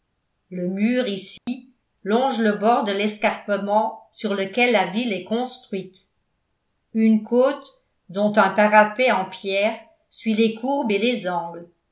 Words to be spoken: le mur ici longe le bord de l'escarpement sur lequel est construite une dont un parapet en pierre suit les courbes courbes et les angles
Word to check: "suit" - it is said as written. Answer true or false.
true